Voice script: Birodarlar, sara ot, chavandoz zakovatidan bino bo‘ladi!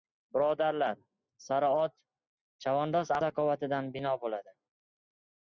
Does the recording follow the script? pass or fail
pass